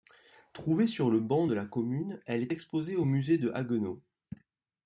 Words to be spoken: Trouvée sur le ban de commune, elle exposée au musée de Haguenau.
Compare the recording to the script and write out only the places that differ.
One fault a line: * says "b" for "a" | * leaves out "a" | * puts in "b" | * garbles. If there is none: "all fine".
* puts in "la"
* puts in "est"